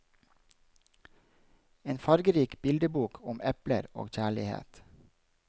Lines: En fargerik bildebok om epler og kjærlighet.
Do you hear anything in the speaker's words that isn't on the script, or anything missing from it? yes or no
no